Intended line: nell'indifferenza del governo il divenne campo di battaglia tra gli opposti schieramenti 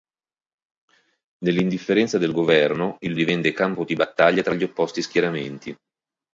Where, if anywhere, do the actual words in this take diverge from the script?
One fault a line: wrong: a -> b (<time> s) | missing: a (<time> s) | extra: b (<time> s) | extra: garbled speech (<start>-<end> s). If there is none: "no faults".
no faults